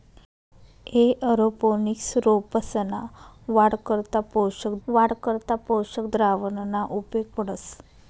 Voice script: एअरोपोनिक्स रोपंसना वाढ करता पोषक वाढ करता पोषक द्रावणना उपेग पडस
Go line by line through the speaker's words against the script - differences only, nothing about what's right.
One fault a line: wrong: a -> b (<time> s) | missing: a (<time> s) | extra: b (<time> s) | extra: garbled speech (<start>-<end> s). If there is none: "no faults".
no faults